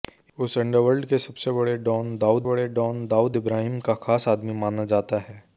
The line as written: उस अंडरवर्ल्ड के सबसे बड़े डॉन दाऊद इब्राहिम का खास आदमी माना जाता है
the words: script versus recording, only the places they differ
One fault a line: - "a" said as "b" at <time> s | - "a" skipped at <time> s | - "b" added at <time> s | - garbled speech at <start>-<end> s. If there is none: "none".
- "बड़े डॉन दाऊद" added at 2.4 s